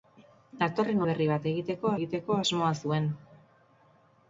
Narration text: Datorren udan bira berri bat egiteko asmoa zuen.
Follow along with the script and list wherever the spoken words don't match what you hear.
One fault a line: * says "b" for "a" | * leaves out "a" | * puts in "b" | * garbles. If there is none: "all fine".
* leaves out "udan bira"
* puts in "egiteko"